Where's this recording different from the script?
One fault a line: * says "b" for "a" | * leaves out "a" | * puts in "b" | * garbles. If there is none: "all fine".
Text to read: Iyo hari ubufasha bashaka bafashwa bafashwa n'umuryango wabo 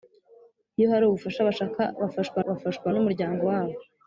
all fine